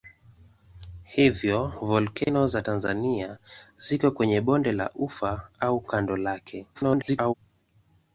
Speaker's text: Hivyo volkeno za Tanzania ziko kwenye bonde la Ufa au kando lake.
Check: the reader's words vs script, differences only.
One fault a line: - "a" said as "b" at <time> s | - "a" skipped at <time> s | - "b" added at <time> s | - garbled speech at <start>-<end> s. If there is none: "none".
- garbled speech at 6.7-7.3 s